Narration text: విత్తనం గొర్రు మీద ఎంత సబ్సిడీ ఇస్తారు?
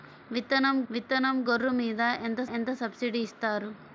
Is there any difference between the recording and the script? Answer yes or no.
yes